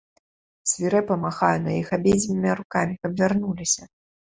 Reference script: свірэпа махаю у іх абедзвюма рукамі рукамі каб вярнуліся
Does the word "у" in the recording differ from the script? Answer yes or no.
yes